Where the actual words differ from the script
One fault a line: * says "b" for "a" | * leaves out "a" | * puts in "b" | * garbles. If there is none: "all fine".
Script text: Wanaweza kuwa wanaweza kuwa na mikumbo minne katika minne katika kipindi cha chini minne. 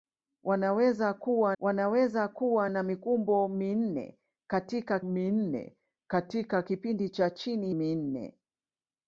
all fine